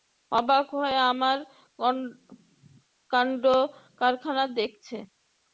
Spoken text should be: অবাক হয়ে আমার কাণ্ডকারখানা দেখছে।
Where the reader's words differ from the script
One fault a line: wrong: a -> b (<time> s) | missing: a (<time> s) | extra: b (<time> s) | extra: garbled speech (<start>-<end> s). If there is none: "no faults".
no faults